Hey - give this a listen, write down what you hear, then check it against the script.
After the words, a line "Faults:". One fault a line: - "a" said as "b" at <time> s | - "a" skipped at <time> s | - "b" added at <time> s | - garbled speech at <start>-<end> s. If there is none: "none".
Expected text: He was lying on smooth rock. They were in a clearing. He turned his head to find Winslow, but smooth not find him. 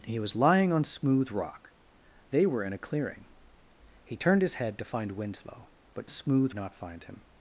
He was lying on smooth rock. They were in a clearing. He turned his head to find Winslow, but smooth not find him.
Faults:
none